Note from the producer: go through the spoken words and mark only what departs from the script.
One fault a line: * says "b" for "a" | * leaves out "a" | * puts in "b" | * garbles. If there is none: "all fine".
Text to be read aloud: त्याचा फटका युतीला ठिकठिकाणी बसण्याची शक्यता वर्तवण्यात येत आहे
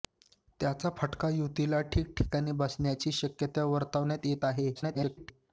* garbles